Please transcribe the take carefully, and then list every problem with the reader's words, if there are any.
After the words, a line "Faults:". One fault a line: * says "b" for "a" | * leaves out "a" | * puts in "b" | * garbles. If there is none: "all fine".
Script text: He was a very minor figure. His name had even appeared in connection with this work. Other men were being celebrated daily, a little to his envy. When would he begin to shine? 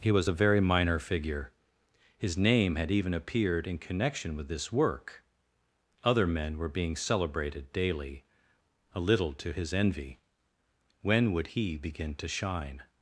He was a very minor figure. His name had even appeared in connection with this work. Other men were being celebrated daily, a little to his envy. When would he begin to shine?
Faults:
all fine